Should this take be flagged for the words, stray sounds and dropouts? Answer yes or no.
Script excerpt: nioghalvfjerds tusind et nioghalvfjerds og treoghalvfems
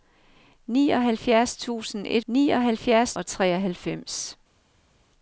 no